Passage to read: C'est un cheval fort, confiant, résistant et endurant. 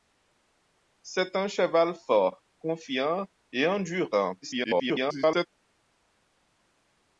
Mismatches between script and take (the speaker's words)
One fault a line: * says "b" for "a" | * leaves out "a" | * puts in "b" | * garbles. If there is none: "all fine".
* leaves out "résistant"
* garbles